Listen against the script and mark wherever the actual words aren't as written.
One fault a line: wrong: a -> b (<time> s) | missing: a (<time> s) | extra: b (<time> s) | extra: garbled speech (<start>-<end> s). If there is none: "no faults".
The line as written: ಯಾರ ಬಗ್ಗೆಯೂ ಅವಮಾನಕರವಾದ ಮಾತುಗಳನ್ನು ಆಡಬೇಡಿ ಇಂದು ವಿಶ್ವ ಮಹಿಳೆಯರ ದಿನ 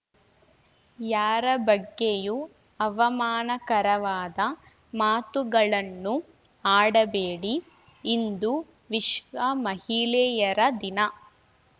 no faults